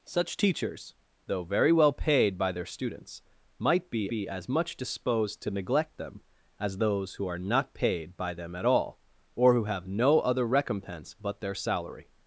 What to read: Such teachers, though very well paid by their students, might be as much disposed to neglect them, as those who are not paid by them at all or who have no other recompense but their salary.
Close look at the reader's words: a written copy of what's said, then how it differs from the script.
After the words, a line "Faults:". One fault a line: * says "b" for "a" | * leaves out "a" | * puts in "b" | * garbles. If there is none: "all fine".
Such teachers, though very well paid by their students, might be be as much disposed to neglect them, as those who are not paid by them at all or who have no other recompense but their salary.
Faults:
* puts in "be"